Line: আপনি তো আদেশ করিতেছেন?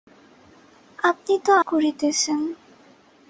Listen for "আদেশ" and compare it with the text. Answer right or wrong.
wrong